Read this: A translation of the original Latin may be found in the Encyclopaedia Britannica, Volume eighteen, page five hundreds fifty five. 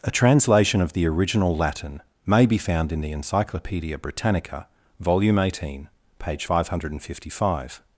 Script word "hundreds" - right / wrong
wrong